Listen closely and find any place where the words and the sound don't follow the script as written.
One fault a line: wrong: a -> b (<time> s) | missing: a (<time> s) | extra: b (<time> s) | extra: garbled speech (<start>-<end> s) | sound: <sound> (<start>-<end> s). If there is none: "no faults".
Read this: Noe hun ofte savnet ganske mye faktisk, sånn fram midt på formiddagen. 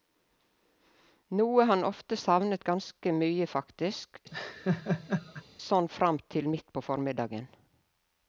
wrong: hun -> han (1.7 s)
sound: laugh (4.3-5.4 s)
extra: til (6.3 s)